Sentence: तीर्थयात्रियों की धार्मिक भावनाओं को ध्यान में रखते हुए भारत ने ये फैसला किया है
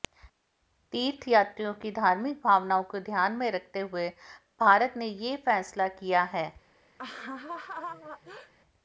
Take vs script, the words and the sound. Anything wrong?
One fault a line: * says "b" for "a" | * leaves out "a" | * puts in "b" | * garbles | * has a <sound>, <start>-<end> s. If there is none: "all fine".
* has a laugh, 7.0-8.5 s